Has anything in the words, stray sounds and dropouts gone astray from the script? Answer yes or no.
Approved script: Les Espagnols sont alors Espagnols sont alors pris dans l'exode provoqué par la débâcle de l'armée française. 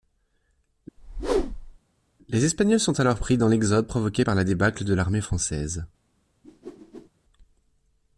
yes